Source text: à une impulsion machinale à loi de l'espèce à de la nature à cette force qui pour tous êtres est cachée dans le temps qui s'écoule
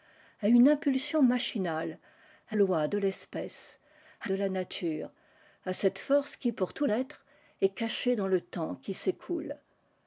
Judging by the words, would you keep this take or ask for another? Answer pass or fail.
pass